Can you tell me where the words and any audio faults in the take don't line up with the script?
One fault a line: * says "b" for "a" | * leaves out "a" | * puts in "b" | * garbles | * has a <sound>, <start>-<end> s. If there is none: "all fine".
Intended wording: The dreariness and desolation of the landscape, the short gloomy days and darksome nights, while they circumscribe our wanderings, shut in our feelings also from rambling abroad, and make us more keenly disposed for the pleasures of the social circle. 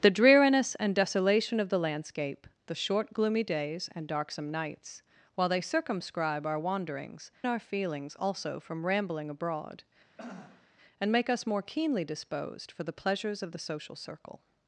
* leaves out "shut in"
* has a throat clearing, 10.2-10.7 s